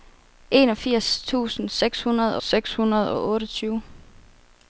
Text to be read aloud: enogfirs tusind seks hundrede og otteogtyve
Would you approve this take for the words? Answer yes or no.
no